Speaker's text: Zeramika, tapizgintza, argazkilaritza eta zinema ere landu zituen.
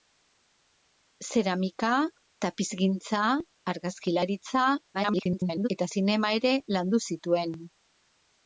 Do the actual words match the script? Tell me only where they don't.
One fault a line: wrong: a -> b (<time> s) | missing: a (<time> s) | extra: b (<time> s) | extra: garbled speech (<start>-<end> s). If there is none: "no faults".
extra: garbled speech (4.9-5.7 s)